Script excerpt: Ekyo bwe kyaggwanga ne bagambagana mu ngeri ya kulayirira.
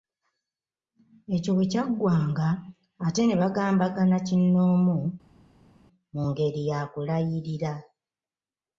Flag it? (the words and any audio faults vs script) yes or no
yes